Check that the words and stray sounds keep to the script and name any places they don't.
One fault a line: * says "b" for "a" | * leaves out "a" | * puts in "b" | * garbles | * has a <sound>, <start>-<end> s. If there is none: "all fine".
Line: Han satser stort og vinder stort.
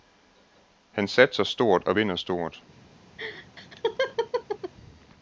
* has a laugh, 3.2-4.7 s